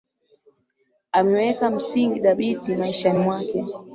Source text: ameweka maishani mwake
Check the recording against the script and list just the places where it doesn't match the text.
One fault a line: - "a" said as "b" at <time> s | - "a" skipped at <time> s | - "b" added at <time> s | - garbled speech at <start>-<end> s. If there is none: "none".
- "msingi dhabiti" added at 1.7 s